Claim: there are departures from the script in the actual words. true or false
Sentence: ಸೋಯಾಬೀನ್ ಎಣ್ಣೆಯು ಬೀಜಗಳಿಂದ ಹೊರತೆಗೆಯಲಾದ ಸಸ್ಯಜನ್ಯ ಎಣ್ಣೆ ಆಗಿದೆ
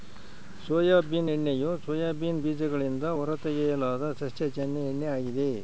true